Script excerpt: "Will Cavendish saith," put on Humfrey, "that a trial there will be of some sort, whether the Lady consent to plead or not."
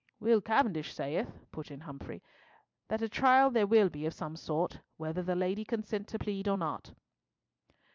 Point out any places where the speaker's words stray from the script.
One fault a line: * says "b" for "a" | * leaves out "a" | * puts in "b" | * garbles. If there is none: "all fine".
* says "in" for "on"